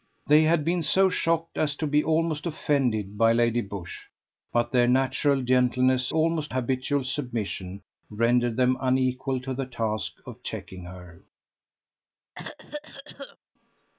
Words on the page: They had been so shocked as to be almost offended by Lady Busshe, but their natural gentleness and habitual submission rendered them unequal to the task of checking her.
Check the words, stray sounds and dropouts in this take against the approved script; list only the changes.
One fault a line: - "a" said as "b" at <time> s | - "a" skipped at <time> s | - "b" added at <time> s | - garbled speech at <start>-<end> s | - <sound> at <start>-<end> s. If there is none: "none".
- "and" said as "almost" at 6.1 s
- cough at 12.3-13.4 s